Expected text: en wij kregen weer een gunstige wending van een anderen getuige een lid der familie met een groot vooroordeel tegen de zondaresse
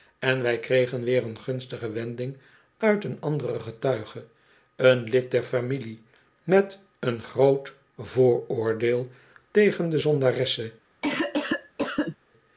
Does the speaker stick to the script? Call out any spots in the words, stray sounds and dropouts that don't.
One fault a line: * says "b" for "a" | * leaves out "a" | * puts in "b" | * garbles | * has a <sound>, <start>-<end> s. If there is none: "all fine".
* says "uit" for "van"
* has a cough, 11.0-12.2 s